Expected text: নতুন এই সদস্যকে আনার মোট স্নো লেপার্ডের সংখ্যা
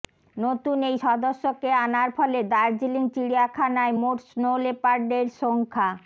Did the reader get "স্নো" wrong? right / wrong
right